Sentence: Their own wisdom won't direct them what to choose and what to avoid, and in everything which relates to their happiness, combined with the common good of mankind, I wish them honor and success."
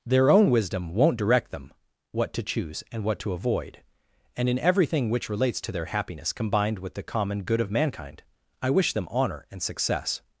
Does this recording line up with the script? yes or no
yes